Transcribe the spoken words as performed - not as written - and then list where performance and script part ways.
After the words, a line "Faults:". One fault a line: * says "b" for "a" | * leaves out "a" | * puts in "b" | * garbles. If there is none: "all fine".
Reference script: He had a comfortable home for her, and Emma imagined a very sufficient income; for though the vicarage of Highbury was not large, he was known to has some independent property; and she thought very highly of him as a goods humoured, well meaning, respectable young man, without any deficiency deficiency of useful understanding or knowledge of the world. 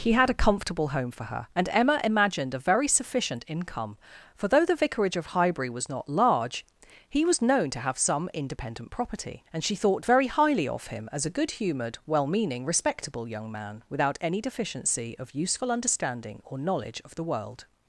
He had a comfortable home for her, and Emma imagined a very sufficient income; for though the vicarage of Highbury was not large, he was known to have some independent property; and she thought very highly of him as a good humoured, well meaning, respectable young man, without any deficiency of useful understanding or knowledge of the world.
Faults:
* says "have" for "has"
* says "good" for "goods"
* leaves out "deficiency"